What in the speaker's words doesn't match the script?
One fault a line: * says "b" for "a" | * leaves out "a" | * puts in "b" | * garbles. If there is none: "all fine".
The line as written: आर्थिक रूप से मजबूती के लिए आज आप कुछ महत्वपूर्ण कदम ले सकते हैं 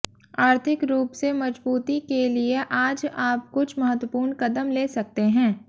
all fine